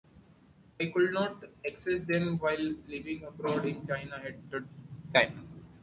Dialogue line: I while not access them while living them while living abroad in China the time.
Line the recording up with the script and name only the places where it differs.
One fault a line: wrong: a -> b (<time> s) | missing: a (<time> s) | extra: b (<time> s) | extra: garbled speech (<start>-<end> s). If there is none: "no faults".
wrong: while -> could (0.9 s)
missing: them while living (3.2 s)
extra: at (4.1 s)